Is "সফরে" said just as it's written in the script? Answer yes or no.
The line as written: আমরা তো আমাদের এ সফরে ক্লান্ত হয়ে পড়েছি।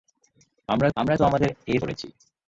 no